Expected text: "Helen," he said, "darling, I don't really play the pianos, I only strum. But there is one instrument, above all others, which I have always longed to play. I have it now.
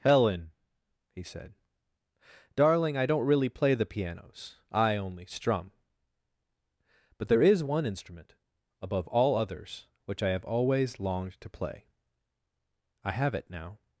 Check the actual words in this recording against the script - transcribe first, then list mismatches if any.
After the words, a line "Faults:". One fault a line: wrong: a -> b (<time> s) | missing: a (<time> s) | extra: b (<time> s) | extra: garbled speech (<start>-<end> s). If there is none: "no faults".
"Helen," he said, "darling, I don't really play the pianos, I only strum. But there is one instrument, above all others, which I have always longed to play. I have it now.
Faults:
no faults